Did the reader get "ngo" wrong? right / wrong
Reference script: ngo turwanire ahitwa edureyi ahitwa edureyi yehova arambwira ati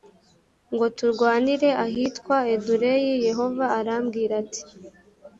right